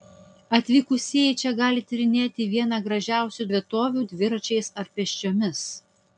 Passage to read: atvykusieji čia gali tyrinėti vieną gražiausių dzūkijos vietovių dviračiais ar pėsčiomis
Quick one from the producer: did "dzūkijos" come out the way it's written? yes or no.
no